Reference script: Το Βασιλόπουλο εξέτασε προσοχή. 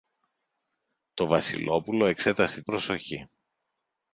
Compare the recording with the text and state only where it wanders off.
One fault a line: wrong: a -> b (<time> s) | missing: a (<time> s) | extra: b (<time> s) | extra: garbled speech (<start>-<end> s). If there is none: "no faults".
no faults